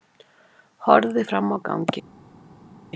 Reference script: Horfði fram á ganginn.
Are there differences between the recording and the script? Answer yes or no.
no